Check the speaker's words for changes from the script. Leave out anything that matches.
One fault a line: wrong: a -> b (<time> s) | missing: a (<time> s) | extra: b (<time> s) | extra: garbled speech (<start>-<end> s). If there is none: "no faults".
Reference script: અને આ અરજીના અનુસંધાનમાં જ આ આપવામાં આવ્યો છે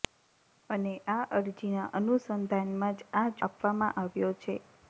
no faults